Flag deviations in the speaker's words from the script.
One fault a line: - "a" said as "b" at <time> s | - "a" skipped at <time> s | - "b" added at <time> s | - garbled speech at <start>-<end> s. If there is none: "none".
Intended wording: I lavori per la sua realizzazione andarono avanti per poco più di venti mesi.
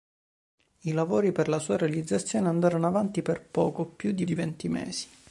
- "di" added at 4.2 s